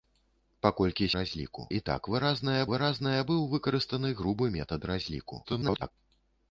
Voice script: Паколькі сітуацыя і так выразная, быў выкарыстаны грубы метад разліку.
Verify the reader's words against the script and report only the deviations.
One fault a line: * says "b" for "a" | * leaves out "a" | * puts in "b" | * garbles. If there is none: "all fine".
* says "разліку" for "сітуацыя"
* puts in "выразная"
* garbles